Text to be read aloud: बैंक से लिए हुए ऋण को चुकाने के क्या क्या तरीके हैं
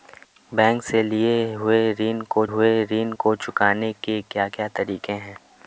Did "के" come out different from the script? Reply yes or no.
no